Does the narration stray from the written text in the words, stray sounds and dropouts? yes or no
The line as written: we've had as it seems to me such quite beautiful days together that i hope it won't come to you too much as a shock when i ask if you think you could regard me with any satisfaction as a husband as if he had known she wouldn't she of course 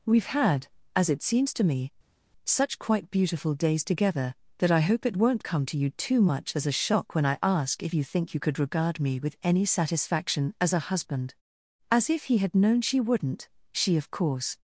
no